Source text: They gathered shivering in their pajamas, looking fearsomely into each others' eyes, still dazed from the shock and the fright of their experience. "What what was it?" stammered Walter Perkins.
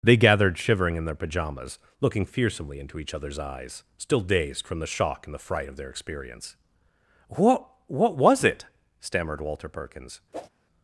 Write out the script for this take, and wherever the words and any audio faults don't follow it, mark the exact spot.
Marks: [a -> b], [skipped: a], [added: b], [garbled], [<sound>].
They gathered shivering in their pajamas, looking fearsomely into each others' eyes, still dazed from the shock and the fright of their experience. "What what was it?" stammered Walter Perkins. [whoosh]